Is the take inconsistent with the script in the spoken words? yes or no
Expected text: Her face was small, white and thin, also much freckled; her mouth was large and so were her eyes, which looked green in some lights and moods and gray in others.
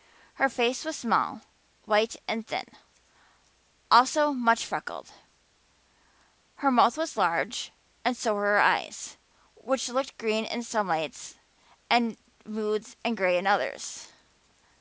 no